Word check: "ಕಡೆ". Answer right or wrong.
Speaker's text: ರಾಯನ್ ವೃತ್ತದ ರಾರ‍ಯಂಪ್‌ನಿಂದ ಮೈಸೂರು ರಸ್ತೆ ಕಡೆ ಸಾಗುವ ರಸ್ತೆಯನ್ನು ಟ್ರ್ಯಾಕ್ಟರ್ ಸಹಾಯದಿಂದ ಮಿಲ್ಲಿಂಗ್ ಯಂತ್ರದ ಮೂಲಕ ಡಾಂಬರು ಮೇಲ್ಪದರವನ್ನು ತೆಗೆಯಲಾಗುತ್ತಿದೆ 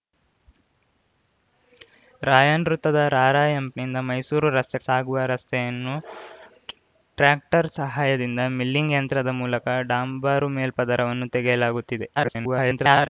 wrong